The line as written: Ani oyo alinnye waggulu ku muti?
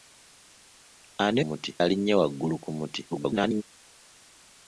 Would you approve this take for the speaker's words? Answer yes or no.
no